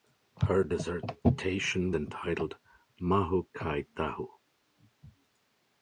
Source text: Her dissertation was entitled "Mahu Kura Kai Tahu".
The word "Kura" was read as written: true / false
false